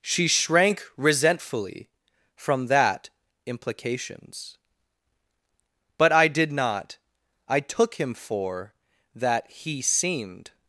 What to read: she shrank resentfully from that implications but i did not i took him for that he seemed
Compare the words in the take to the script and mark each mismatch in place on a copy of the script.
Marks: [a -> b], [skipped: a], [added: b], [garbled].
she shrank resentfully from that implications but i did not i took him for that he seemed